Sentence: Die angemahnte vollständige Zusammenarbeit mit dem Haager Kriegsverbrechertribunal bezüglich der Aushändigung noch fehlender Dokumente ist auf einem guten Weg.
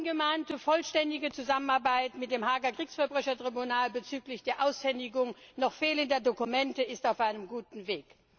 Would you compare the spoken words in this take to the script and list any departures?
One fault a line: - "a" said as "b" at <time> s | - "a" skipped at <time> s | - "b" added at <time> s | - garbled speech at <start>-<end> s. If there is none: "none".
none